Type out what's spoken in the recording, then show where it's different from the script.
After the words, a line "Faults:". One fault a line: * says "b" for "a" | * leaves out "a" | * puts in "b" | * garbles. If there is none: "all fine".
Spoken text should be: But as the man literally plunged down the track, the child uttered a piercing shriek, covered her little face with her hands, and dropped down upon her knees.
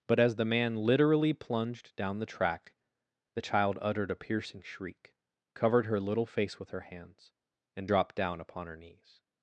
But as the man literally plunged down the track, the child uttered a piercing shriek, covered her little face with her hands, and dropped down upon her knees.
Faults:
all fine